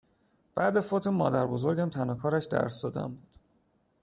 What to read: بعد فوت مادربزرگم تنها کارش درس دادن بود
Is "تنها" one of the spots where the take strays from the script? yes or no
no